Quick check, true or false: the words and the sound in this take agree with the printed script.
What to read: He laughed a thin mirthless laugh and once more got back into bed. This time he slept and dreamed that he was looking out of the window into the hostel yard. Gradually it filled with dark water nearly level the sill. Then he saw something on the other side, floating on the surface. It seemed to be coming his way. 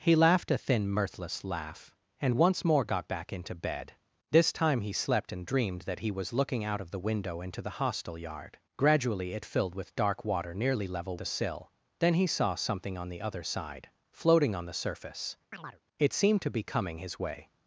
false